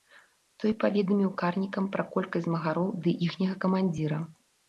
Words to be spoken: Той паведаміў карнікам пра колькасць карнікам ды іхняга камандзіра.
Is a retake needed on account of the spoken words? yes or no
yes